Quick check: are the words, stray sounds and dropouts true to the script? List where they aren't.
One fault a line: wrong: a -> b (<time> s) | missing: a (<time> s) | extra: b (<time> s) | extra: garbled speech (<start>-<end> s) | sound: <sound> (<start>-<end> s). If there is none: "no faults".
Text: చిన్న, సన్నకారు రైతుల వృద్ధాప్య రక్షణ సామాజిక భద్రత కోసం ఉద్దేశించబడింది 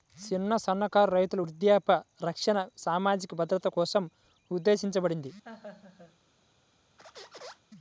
sound: laugh (5.4-6.2 s)
sound: squeak (7.0-7.6 s)